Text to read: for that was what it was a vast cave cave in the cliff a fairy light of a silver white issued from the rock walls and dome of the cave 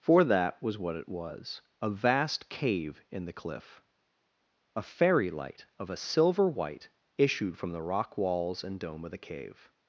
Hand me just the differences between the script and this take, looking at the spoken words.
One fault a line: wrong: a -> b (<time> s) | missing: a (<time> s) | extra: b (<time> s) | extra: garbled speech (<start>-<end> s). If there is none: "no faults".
missing: cave (3.0 s)